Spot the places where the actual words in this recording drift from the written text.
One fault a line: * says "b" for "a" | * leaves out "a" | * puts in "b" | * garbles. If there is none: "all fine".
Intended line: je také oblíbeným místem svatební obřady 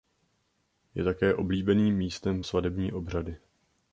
all fine